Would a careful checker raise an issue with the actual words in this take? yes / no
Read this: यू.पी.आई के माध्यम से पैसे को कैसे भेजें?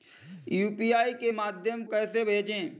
yes